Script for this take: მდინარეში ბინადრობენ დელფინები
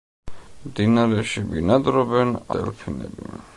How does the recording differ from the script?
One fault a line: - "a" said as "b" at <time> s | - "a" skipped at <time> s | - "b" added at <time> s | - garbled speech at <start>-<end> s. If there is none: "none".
none